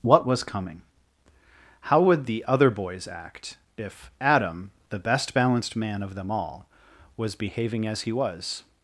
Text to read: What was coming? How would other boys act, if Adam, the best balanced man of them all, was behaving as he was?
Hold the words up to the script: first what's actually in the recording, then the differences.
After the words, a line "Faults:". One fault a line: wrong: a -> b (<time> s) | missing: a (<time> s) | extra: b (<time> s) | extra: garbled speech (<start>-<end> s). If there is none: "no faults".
What was coming? How would the other boys act, if Adam, the best balanced man of them all, was behaving as he was?
Faults:
extra: the (2.2 s)